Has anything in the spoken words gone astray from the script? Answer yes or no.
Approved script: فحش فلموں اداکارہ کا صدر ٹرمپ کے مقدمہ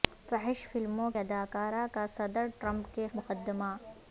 no